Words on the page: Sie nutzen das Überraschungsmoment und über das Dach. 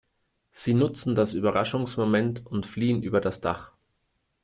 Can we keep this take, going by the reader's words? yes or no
no